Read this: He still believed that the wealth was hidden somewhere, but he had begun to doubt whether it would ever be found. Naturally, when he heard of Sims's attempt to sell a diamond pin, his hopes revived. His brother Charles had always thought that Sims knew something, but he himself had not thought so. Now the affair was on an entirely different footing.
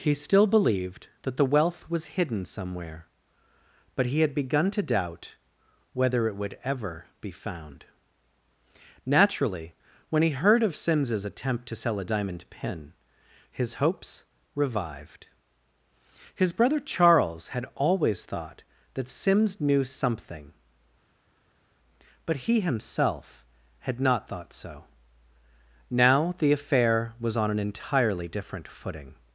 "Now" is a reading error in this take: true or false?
false